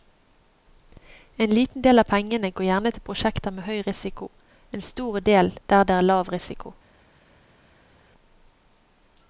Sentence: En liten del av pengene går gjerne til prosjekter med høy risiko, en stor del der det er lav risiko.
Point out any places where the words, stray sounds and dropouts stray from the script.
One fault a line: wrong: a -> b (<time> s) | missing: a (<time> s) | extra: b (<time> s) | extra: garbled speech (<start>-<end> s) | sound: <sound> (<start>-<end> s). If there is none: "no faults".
no faults